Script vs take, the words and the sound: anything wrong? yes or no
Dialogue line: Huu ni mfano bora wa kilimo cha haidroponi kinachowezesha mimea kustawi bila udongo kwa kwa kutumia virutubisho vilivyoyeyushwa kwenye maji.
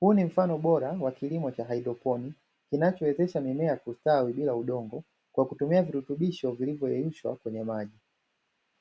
yes